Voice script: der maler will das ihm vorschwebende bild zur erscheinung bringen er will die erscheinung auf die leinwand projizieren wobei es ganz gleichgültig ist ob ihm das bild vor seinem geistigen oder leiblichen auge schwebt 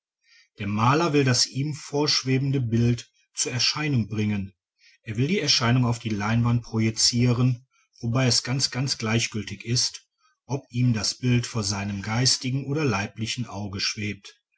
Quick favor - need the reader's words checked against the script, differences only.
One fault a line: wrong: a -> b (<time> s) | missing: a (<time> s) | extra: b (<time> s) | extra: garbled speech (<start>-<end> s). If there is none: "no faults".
extra: ganz (8.7 s)